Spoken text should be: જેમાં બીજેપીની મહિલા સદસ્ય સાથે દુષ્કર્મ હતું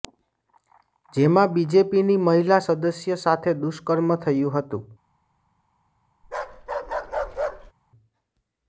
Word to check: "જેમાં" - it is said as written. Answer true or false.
true